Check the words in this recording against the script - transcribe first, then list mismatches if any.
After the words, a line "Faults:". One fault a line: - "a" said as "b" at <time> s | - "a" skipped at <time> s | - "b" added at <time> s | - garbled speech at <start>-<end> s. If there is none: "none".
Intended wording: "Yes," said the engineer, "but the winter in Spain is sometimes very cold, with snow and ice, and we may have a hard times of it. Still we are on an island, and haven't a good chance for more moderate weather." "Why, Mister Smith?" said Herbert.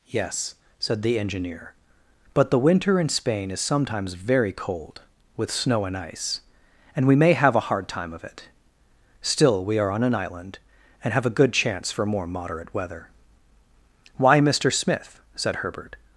"Yes," said the engineer, "but the winter in Spain is sometimes very cold, with snow and ice, and we may have a hard time of it. Still we are on an island, and have a good chance for more moderate weather." "Why, Mister Smith?" said Herbert.
Faults:
- "times" said as "time" at 7.9 s
- "haven't" said as "have" at 11.1 s